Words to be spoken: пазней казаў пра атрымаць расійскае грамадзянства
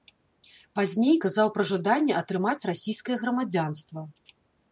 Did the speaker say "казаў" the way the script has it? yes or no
yes